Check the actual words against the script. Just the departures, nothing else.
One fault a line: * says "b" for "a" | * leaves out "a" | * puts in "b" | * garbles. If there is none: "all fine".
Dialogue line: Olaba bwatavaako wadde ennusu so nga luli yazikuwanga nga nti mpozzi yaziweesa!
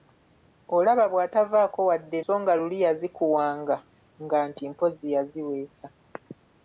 * leaves out "ennusu"